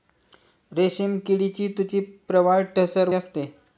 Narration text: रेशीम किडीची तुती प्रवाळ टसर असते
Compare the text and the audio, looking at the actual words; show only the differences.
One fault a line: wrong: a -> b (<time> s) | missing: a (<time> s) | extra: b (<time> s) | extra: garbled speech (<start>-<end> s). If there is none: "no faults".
no faults